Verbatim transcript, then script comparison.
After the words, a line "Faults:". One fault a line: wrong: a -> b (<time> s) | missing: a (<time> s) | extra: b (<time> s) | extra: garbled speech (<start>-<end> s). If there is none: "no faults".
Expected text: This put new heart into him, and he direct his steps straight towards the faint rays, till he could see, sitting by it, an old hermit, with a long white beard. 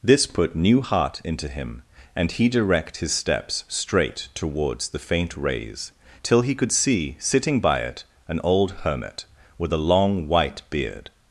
This put new heart into him, and he direct his steps straight towards the faint rays, till he could see, sitting by it, an old hermit, with a long white beard.
Faults:
no faults